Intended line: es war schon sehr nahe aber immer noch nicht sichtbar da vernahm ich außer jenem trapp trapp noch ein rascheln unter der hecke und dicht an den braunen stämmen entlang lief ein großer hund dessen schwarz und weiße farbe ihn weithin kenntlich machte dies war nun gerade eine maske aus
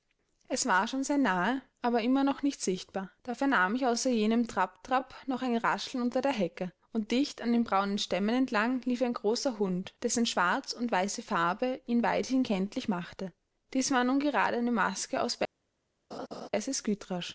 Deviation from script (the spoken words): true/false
false